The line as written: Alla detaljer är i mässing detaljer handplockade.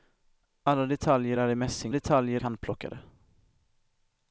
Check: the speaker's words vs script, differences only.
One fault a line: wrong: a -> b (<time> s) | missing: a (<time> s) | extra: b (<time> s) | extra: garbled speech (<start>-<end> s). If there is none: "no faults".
no faults